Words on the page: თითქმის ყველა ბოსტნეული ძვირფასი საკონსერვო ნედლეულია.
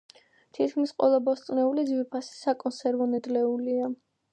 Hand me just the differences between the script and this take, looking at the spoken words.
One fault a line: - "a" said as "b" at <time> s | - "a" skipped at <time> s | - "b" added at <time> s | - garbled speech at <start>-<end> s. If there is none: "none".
none